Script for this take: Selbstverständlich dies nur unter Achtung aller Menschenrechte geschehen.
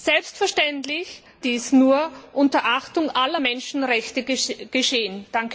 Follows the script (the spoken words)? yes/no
yes